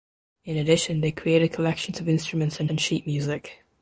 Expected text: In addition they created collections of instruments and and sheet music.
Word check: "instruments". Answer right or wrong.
right